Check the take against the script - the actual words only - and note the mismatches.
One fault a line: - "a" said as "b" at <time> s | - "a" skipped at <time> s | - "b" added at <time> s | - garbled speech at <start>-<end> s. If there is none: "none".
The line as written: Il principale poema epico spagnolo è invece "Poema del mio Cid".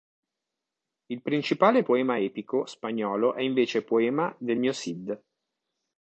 none